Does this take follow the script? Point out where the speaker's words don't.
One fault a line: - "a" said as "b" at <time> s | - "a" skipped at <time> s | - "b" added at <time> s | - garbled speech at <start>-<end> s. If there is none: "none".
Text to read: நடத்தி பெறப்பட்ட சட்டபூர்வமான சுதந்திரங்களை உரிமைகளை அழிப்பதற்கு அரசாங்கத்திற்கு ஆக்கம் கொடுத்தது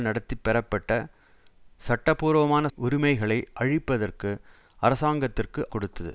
- "சுதந்திரங்களை" skipped at 2.6 s
- "ஆக்கம்" skipped at 5.6 s